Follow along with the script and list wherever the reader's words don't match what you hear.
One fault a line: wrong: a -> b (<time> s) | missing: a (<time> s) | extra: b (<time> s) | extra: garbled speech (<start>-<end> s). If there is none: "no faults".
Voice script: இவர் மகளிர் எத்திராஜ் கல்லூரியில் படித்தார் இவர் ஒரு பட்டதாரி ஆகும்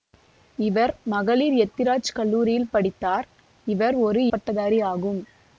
no faults